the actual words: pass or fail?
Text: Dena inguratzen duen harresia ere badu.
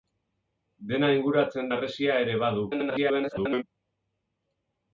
fail